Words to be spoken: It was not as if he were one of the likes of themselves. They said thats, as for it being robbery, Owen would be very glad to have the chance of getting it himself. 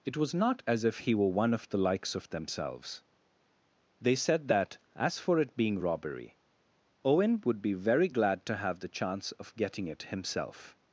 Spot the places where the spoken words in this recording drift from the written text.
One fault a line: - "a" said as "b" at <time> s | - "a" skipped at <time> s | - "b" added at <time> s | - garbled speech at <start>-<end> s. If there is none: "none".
- "thats" said as "that" at 4.5 s